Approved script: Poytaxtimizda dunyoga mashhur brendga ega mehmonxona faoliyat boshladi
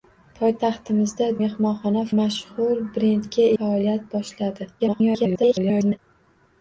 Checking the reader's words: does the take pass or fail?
fail